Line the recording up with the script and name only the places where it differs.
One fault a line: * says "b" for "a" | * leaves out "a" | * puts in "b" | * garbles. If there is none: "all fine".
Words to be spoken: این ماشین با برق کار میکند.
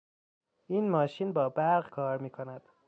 all fine